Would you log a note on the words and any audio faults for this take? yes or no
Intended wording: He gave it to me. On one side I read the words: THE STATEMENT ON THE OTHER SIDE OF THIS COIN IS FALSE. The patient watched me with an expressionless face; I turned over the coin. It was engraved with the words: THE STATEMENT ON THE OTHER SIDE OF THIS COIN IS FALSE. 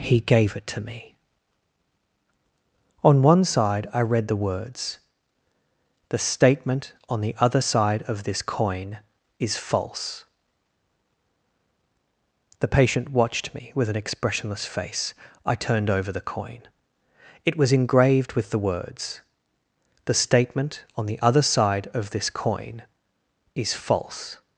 no